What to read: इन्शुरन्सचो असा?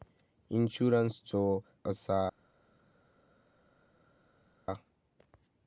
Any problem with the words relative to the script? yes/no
no